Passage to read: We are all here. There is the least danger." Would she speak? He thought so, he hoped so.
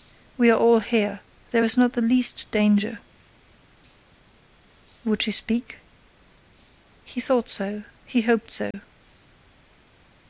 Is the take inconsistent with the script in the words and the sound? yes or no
yes